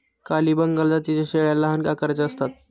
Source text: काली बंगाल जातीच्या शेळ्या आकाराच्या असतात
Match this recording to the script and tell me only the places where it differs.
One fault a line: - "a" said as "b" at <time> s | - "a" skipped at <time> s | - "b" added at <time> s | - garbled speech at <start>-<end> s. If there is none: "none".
- "लहान" added at 1.6 s